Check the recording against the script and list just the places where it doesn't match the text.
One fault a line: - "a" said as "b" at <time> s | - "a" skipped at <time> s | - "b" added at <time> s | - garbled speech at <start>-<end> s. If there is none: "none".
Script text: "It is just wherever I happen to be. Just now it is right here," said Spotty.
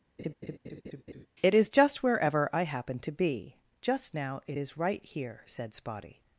none